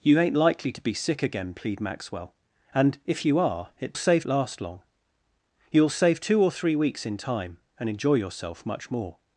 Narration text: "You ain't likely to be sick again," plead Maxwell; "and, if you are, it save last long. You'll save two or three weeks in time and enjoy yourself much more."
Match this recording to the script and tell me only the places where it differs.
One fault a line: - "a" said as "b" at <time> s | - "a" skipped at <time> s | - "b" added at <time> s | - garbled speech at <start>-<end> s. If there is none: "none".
none